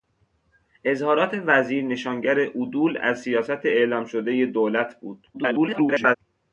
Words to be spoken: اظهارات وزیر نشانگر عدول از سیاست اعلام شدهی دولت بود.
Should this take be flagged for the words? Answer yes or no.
yes